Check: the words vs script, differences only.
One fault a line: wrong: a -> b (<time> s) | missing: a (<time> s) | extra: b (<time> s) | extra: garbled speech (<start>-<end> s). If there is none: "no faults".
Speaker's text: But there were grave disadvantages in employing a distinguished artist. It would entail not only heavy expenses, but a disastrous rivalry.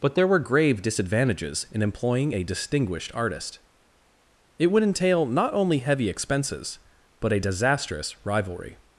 no faults